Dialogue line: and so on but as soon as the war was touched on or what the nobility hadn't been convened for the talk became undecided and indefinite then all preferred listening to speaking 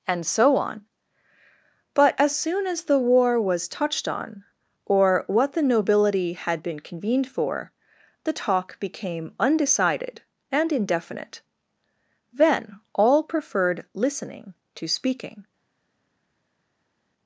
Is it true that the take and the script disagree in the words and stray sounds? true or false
true